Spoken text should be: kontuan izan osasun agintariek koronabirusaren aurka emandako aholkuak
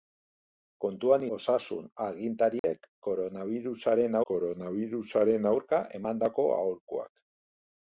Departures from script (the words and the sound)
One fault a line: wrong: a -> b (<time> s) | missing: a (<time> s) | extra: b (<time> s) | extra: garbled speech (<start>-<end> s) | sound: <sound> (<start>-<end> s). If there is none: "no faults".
missing: izan (1.2 s)
sound: dropout (2.6-2.6 s)
extra: koronabirusaren (4.3 s)